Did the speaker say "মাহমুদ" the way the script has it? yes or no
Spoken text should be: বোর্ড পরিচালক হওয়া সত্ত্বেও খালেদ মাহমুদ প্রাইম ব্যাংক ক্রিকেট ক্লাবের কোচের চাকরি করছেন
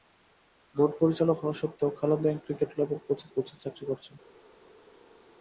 no